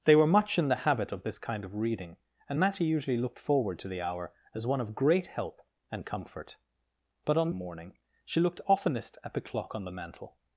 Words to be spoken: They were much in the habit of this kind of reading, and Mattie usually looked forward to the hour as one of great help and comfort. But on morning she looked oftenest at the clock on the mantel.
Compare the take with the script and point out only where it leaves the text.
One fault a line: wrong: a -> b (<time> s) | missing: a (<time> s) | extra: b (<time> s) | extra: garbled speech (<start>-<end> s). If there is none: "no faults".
no faults